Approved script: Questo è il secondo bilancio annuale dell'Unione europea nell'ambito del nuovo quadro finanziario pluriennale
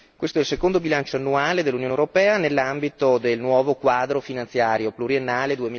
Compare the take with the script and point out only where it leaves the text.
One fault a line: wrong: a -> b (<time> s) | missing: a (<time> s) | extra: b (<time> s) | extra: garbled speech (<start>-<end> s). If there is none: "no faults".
no faults